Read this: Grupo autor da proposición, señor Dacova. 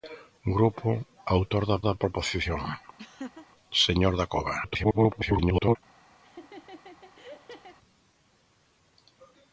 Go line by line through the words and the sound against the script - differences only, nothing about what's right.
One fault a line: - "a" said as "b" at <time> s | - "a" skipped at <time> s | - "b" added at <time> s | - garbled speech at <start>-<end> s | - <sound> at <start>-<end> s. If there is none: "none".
- "da" added at 1.9 s
- laugh at 3.0-3.5 s
- garbled speech at 4.6-5.8 s
- laugh at 6.2-7.8 s